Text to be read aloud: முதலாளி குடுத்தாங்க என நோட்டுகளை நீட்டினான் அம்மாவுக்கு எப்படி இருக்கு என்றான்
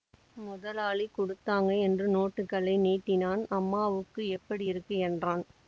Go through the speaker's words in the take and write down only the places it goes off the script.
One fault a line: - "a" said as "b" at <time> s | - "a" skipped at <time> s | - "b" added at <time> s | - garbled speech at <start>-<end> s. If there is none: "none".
- "என" said as "என்று" at 1.8 s